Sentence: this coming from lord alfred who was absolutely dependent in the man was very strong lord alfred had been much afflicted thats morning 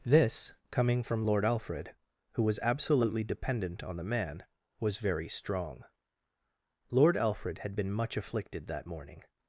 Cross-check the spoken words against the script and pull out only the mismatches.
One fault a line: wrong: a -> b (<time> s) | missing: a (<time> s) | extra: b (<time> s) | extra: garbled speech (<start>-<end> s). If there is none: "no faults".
wrong: in -> on (3.8 s)
wrong: thats -> that (8.7 s)